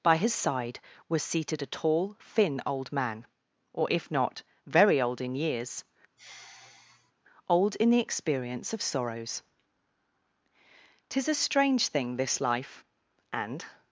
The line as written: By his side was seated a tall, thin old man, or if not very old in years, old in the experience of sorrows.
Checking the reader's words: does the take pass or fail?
fail